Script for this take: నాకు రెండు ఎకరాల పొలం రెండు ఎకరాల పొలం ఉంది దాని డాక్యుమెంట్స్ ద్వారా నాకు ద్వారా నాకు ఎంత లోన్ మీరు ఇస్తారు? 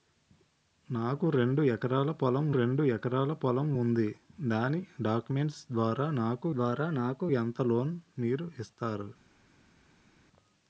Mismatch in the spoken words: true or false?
false